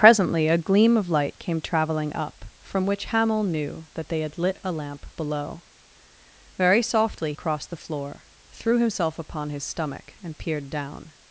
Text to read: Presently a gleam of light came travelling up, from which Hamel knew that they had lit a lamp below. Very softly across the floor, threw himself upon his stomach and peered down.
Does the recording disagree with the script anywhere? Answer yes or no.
no